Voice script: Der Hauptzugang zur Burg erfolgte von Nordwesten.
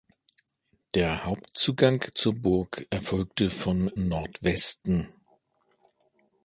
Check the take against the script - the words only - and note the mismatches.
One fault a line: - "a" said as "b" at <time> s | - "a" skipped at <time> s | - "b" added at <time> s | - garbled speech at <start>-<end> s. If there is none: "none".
none